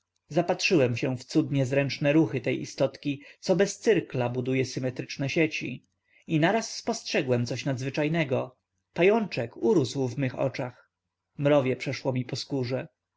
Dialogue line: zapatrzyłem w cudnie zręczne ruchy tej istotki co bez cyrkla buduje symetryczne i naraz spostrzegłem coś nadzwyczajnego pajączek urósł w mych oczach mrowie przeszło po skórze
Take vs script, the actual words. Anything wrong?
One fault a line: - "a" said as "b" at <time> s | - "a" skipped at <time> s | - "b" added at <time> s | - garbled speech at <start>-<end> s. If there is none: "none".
- "się" added at 0.9 s
- "sieci" added at 5.3 s
- "mi" added at 12.1 s